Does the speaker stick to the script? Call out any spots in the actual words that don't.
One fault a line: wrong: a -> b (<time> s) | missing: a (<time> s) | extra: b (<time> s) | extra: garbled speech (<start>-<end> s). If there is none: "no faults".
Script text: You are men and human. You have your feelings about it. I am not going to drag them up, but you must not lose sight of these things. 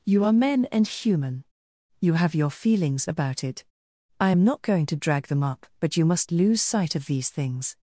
missing: not (6.3 s)